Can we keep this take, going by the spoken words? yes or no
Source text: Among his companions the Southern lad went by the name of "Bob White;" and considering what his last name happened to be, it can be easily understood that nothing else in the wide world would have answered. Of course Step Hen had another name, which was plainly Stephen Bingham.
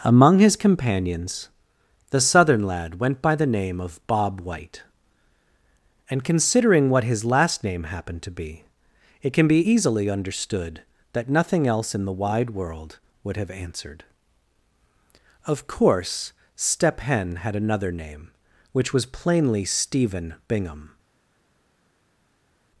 yes